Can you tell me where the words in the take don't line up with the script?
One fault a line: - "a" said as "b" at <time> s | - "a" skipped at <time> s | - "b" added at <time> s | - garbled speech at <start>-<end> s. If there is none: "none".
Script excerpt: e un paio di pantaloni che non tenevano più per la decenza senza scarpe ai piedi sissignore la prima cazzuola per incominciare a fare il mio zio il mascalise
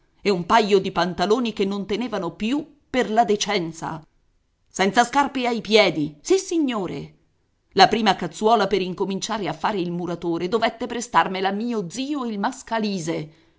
- "muratore dovette prestarmela" added at 9.9 s